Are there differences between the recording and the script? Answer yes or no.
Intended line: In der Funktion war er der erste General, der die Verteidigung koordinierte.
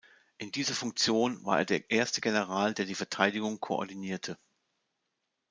yes